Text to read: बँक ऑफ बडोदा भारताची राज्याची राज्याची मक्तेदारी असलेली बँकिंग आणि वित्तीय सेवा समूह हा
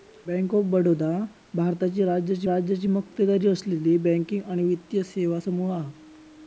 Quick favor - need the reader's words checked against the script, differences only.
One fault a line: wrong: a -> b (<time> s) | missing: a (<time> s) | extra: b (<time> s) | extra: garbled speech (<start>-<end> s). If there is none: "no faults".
no faults